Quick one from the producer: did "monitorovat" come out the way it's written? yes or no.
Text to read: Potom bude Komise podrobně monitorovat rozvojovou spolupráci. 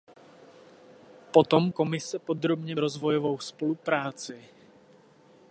no